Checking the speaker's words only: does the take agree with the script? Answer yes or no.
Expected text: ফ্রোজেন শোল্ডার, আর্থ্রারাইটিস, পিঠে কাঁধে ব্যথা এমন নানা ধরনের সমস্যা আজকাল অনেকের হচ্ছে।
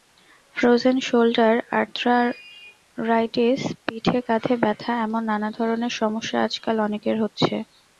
yes